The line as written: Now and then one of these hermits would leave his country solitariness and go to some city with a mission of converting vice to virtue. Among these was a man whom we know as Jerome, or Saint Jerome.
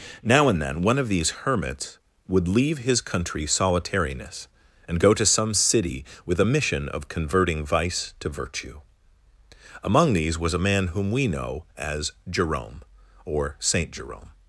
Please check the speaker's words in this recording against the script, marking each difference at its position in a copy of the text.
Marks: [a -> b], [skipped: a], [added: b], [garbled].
Now and then one of these hermits would leave his country solitariness and go to some city with a mission of converting vice to virtue. Among these was a man whom we know as Jerome, or Saint Jerome.